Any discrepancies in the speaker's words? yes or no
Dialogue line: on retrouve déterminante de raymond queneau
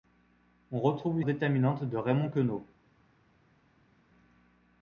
no